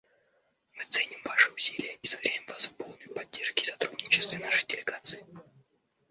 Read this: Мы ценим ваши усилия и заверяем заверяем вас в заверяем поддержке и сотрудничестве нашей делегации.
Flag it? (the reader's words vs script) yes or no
yes